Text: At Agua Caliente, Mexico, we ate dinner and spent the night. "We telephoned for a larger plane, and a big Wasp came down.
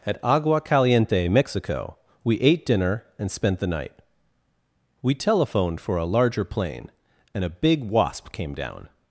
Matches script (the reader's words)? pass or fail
pass